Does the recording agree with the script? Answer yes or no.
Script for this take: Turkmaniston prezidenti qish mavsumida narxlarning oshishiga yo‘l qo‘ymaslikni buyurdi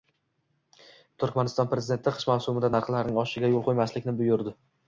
yes